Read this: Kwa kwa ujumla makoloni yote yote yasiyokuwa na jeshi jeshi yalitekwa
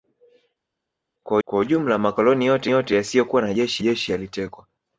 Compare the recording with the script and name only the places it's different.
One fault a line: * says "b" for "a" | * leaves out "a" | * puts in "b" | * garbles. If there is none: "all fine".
all fine